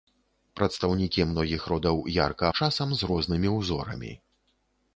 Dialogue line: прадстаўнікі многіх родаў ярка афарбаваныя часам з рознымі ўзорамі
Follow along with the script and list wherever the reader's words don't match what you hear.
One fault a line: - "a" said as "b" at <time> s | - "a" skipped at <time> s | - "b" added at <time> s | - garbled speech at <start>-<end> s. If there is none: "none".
- "афарбаваныя" skipped at 2.5 s